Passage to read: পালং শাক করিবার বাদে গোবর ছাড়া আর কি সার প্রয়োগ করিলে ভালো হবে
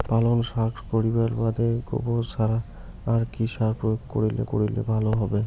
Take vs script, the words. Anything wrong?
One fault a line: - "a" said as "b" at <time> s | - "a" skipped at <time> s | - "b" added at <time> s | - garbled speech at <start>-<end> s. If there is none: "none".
- "করিলে" added at 4.5 s